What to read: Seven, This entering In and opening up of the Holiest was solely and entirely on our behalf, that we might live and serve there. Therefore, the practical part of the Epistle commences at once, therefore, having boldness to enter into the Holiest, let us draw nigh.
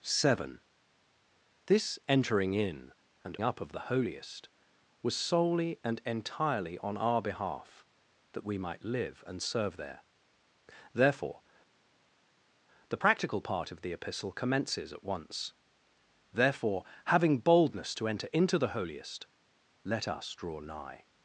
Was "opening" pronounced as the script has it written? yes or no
no